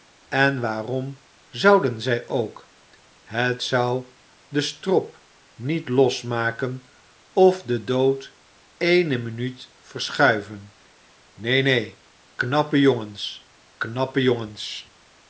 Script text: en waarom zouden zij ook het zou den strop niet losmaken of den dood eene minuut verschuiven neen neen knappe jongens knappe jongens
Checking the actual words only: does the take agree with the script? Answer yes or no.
yes